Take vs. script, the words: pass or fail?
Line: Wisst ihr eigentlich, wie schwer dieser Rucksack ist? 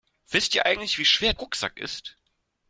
fail